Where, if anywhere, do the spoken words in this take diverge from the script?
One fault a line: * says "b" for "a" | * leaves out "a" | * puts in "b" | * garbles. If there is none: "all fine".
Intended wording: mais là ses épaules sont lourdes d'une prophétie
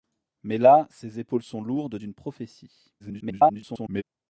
* garbles